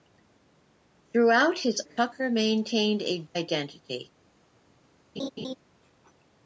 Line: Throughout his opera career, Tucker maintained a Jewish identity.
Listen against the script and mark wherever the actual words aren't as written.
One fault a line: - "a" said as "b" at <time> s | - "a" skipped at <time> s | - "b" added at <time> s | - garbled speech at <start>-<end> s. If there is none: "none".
- "opera career" skipped at 1.9 s
- "Jewish" skipped at 3.2 s